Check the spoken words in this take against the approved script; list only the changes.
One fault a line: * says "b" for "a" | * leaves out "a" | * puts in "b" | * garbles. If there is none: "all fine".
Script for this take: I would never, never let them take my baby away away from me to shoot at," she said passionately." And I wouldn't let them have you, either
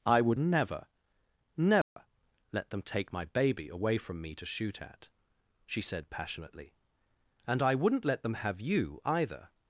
* leaves out "away"